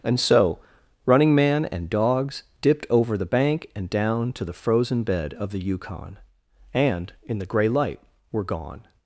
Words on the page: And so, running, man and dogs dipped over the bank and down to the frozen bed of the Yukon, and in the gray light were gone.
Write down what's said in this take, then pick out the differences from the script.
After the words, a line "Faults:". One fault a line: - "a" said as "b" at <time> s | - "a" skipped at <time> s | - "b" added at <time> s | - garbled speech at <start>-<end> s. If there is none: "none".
And so, running, man and dogs dipped over the bank and down to the frozen bed of the Yukon, and in the gray light were gone.
Faults:
none